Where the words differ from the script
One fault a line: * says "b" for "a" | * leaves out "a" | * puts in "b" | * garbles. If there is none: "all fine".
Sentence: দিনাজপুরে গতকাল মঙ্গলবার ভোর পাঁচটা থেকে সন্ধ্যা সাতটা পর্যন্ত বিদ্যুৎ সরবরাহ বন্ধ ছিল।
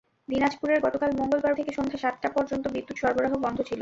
* leaves out "ভোর পাঁচটা"